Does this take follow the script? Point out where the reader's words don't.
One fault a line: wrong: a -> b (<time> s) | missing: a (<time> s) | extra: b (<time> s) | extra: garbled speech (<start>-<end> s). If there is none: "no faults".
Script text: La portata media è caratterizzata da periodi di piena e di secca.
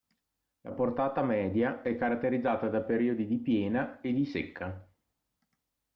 no faults